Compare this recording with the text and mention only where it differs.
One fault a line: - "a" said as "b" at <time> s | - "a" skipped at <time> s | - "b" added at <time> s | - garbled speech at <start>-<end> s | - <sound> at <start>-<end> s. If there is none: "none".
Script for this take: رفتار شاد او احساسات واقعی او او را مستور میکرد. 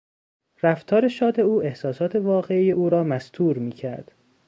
- "او" skipped at 2.9 s